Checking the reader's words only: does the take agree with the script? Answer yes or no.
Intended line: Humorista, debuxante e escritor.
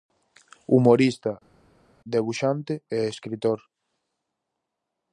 yes